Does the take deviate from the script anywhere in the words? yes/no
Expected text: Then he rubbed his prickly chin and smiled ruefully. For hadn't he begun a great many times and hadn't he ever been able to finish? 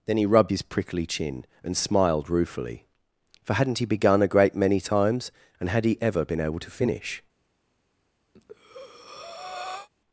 yes